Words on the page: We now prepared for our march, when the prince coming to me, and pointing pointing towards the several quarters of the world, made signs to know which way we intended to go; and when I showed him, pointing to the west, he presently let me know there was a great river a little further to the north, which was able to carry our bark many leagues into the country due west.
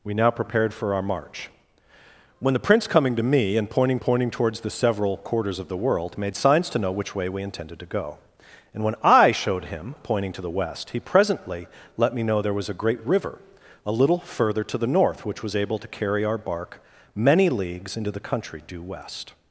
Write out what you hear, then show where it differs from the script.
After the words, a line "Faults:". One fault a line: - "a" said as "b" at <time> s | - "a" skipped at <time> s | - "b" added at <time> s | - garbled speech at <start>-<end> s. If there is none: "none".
We now prepared for our march, when the prince coming to me, and pointing pointing towards the several quarters of the world, made signs to know which way we intended to go; and when I showed him, pointing to the west, he presently let me know there was a great river a little further to the north, which was able to carry our bark many leagues into the country due west.
Faults:
none